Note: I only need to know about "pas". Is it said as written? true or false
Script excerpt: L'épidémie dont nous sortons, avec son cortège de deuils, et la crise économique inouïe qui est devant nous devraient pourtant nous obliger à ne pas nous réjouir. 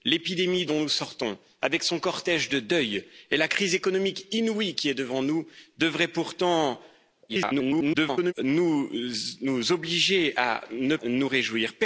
false